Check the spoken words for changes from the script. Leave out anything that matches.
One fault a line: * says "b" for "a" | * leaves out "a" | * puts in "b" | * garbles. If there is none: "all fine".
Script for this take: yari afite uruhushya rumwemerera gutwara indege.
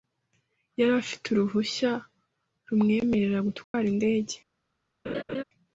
all fine